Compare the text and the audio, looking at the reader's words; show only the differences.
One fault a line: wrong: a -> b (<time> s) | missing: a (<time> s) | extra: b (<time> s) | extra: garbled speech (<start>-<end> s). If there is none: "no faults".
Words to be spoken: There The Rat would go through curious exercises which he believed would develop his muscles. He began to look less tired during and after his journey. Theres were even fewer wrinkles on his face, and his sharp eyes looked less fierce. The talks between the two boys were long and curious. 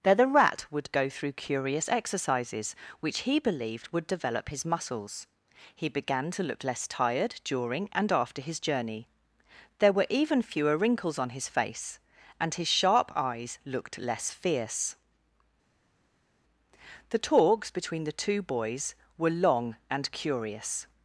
wrong: Theres -> There (9.8 s)